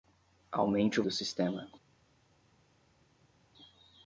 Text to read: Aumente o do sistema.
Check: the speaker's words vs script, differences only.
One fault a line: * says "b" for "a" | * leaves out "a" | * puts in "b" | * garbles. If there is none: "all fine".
all fine